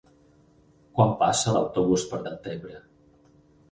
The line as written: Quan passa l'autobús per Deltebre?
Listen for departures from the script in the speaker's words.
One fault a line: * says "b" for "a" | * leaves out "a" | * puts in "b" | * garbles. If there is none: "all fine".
all fine